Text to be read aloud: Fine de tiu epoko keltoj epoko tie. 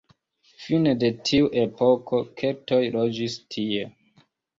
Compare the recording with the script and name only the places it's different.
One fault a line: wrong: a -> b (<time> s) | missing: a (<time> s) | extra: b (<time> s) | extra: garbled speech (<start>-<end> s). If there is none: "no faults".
wrong: epoko -> loĝis (3.0 s)